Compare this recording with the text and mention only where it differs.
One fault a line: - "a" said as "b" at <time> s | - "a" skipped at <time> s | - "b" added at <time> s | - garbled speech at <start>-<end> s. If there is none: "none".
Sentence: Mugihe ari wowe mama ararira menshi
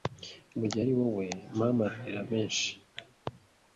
none